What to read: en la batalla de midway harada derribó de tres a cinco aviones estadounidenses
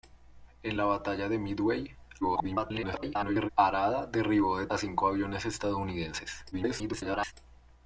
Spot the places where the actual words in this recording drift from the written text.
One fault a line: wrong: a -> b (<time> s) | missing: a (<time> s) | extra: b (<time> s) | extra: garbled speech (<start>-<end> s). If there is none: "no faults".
extra: garbled speech (2.2-3.5 s)
missing: tres (4.7 s)
extra: garbled speech (6.5-7.3 s)